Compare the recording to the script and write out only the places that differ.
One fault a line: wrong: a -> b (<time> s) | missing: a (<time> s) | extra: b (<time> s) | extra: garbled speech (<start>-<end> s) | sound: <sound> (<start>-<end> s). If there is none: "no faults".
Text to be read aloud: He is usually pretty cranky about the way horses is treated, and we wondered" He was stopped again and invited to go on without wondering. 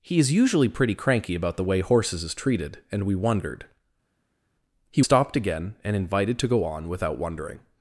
missing: was (5.0 s)